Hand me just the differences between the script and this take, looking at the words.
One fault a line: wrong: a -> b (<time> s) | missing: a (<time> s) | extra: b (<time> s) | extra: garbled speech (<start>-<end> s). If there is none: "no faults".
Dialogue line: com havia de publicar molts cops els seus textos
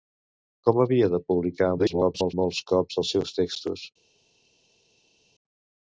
extra: garbled speech (1.8-2.3 s)